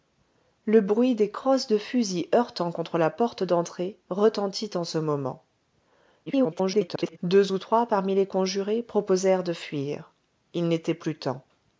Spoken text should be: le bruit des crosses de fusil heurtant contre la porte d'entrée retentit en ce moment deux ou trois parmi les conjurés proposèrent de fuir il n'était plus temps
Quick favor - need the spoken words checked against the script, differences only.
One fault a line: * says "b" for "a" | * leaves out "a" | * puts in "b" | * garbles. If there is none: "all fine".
* garbles